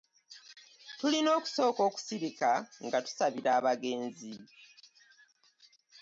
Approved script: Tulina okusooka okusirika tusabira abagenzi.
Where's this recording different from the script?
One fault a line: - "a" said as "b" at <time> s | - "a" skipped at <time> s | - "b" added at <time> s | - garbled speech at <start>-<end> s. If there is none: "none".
- "nga" added at 2.9 s